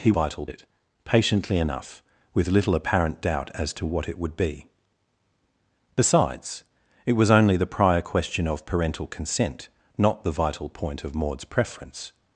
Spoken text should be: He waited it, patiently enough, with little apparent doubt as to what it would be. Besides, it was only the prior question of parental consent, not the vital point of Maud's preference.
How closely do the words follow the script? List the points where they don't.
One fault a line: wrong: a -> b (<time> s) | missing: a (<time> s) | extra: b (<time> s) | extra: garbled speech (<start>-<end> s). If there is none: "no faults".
wrong: waited -> vital (0.1 s)